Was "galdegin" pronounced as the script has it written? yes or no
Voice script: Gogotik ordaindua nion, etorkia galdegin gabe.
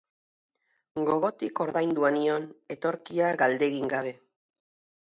yes